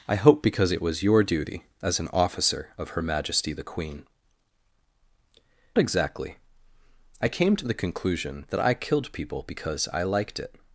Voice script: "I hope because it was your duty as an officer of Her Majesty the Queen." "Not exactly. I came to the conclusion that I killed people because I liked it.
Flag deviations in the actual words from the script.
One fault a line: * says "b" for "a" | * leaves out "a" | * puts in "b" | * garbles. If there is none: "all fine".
* leaves out "Not"